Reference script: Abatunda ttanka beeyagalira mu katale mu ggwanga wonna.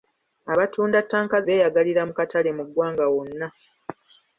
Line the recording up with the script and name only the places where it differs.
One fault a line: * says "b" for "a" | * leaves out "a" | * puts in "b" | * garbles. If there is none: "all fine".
all fine